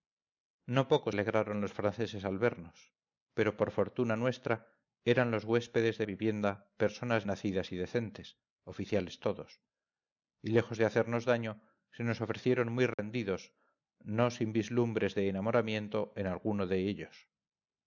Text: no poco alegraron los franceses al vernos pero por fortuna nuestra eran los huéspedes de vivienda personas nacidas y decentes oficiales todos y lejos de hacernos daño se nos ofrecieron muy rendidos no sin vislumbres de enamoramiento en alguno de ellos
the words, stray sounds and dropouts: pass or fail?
fail